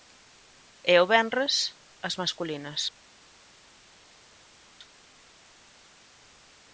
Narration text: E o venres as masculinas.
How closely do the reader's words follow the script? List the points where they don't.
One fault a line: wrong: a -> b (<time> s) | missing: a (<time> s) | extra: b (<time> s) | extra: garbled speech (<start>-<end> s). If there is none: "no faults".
no faults